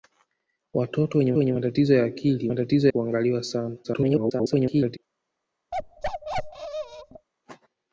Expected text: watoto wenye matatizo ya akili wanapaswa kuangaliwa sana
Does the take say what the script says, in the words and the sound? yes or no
no